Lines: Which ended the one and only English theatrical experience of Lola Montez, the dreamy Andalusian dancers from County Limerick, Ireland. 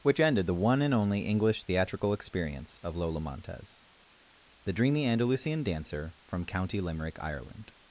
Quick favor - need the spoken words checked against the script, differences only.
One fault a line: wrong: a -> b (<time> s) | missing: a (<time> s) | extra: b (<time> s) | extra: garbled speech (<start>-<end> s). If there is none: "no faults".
wrong: dancers -> dancer (5.6 s)